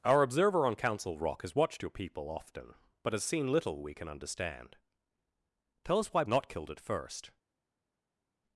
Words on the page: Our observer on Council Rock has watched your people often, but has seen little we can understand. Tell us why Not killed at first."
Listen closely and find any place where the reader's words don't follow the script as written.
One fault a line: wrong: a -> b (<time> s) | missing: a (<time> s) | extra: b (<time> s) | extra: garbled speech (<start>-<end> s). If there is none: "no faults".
no faults